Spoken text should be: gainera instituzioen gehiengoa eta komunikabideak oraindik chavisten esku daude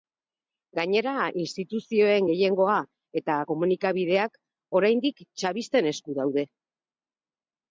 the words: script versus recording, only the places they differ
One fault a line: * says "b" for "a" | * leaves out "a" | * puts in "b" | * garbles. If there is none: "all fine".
all fine